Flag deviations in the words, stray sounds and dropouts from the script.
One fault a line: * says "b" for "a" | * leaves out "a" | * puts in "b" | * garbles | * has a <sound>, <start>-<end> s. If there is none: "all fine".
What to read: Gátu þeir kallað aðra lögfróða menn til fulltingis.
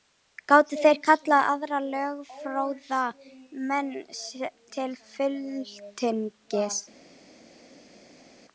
all fine